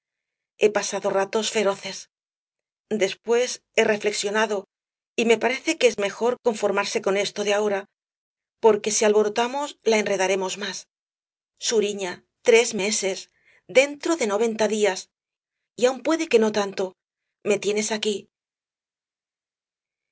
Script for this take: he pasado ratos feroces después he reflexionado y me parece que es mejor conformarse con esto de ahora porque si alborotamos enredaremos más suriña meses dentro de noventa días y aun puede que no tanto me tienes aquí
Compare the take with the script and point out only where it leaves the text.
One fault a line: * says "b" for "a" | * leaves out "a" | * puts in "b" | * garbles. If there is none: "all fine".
* puts in "la"
* puts in "tres"